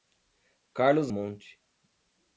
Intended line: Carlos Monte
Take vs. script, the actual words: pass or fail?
pass